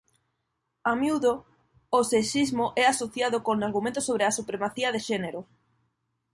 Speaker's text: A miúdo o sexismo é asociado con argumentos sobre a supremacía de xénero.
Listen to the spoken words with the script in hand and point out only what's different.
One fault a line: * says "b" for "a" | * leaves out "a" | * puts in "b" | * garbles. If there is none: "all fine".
all fine